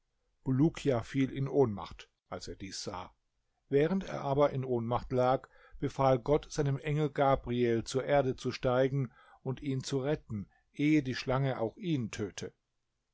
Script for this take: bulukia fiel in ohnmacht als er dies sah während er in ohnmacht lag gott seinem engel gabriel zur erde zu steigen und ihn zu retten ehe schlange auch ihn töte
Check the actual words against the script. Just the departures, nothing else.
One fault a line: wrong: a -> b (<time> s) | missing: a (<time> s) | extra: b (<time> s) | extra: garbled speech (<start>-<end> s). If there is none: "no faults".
extra: aber (4.2 s)
extra: befahl (5.8 s)
extra: die (11.0 s)